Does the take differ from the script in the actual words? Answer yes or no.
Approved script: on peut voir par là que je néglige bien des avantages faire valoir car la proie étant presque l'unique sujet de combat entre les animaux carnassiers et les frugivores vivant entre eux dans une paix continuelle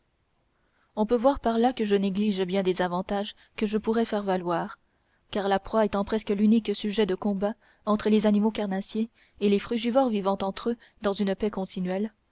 yes